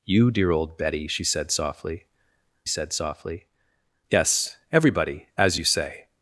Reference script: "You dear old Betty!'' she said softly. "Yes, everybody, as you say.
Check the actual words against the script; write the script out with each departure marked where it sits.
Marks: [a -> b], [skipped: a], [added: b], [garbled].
"You dear old Betty!'' she said softly. [added: said softly] "Yes, everybody, as you say.